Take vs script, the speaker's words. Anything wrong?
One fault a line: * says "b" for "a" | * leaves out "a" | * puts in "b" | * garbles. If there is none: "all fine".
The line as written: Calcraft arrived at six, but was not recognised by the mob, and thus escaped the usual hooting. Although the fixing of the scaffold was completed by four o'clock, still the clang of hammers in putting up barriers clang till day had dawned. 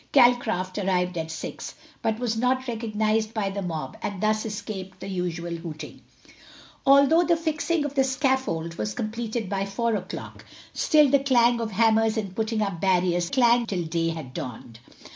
all fine